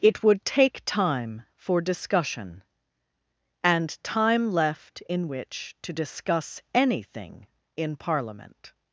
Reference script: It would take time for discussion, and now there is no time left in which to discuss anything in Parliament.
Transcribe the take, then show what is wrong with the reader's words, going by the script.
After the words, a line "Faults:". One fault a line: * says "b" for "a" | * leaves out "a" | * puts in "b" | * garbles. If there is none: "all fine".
It would take time for discussion, and time left in which to discuss anything in Parliament.
Faults:
* leaves out "now there is no"